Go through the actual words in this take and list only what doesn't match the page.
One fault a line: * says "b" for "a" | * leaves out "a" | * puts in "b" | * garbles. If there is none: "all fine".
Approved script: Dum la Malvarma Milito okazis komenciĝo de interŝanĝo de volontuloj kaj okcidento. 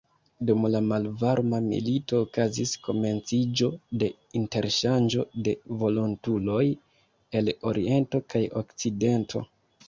* puts in "el oriento"